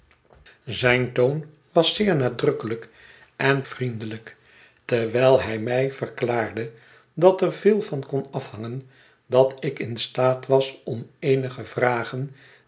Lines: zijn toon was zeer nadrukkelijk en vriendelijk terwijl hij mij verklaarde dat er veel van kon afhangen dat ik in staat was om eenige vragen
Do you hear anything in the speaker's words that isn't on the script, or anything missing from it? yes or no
no